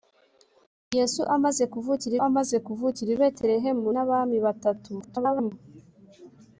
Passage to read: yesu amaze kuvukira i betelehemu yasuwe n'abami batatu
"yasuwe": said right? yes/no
no